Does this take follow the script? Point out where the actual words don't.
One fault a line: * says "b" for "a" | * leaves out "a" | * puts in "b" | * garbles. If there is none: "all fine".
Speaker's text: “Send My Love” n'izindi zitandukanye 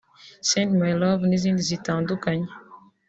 all fine